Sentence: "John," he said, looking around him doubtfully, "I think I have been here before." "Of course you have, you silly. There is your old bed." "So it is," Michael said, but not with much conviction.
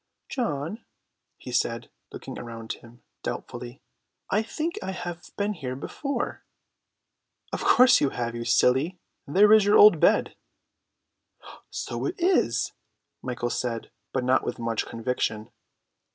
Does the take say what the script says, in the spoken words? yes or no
yes